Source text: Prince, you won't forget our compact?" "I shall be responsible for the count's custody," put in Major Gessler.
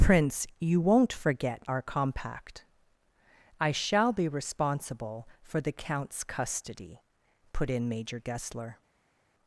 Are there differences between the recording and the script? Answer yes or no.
no